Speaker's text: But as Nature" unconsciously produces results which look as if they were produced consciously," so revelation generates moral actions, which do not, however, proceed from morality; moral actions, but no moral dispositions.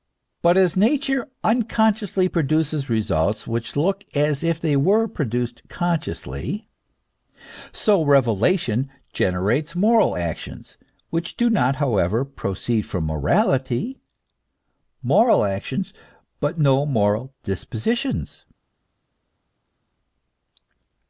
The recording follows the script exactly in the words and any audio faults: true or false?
true